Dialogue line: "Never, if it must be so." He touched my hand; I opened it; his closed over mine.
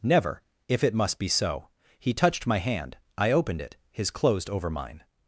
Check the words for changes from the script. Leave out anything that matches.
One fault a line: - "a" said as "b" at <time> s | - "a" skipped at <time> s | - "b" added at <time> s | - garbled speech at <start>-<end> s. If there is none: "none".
none